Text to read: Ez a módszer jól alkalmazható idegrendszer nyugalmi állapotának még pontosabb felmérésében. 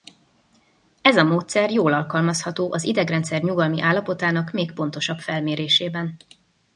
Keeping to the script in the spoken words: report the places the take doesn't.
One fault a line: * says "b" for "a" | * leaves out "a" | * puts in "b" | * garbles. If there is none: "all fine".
* puts in "az"